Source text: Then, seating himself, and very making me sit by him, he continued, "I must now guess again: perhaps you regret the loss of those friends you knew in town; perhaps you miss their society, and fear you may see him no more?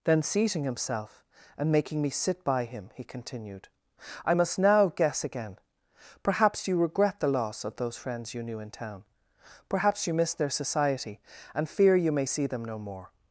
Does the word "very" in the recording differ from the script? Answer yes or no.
yes